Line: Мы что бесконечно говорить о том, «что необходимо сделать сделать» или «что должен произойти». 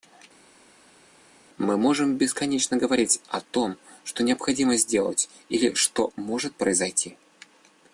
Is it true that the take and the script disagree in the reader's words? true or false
true